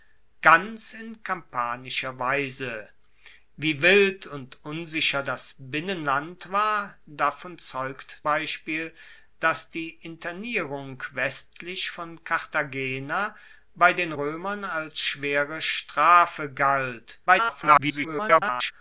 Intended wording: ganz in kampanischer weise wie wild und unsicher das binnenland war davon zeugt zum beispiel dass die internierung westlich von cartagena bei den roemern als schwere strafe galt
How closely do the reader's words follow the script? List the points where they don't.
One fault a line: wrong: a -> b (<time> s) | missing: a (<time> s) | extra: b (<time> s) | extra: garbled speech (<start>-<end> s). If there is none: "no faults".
missing: zum (8.2 s)
extra: garbled speech (17.3-18.7 s)